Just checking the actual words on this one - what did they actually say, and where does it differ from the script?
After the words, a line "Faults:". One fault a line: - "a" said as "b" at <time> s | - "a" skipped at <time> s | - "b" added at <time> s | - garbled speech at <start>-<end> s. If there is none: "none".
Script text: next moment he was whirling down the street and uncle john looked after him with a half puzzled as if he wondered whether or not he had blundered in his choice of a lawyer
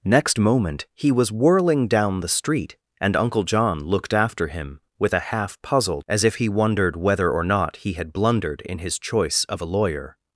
next moment he was whirling down the street and uncle john looked after him with a half puzzled as if he wondered whether or not he had blundered in his choice of a lawyer
Faults:
none